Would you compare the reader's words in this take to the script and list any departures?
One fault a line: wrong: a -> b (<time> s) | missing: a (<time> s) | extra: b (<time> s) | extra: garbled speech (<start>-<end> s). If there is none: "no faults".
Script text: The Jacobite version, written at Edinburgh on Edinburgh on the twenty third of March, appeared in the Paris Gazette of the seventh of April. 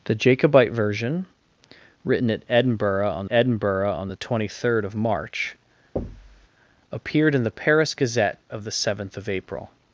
no faults